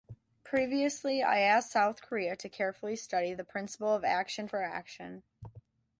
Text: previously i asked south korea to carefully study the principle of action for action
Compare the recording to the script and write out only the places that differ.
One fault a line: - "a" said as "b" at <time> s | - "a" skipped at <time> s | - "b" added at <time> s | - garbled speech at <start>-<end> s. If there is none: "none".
none